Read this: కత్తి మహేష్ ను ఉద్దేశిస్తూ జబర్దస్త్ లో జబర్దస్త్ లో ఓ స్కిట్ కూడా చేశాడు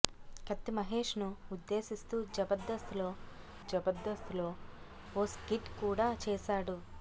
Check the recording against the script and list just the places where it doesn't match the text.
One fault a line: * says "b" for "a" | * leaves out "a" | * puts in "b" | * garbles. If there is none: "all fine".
all fine